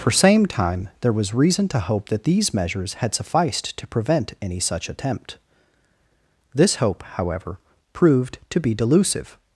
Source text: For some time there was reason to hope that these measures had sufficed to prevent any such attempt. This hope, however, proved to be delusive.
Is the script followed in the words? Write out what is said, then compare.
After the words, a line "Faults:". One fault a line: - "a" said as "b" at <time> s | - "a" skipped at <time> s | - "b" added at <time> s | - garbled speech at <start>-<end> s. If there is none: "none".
For same time there was reason to hope that these measures had sufficed to prevent any such attempt. This hope, however, proved to be delusive.
Faults:
- "some" said as "same" at 0.1 s